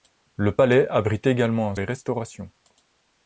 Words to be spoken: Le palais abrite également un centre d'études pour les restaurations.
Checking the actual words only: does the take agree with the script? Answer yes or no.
no